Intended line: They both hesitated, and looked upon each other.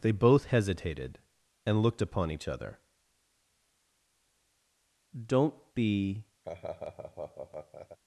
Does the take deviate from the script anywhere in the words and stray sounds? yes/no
yes